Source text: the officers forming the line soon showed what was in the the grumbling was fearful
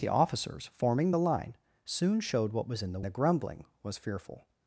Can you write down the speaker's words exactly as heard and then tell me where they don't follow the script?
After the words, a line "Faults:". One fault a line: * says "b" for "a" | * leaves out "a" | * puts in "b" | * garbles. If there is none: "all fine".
the officers forming the line soon showed what was in the the grumbling was fearful
Faults:
all fine